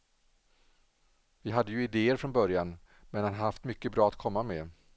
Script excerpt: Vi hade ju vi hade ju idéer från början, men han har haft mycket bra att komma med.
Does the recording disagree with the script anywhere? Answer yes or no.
yes